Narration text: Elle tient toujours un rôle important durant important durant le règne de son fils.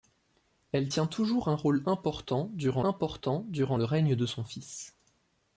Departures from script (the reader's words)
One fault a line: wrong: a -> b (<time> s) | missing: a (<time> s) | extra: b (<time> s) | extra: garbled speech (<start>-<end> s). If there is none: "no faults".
no faults